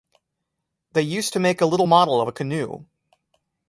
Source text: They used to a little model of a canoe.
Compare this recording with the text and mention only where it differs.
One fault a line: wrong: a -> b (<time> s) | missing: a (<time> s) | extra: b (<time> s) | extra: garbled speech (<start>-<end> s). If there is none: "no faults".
extra: make (1.4 s)